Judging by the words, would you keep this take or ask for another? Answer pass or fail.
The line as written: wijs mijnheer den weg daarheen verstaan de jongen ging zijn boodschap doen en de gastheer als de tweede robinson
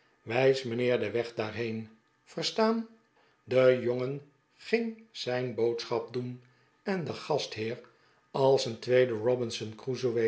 fail